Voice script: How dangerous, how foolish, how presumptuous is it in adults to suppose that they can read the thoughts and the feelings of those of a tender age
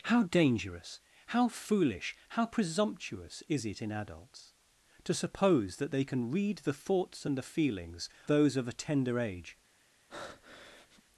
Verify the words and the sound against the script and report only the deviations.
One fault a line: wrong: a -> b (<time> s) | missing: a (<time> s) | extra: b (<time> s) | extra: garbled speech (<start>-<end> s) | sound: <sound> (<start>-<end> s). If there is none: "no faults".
missing: of (8.1 s)
sound: breath (10.1-11.0 s)